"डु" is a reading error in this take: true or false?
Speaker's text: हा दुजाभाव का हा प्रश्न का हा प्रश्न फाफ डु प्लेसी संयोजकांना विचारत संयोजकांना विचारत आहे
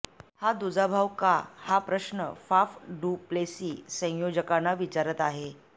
false